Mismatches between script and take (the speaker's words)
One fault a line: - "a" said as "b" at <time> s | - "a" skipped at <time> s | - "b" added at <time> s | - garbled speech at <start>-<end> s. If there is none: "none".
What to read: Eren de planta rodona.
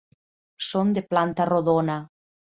- "Eren" said as "Són" at 0.7 s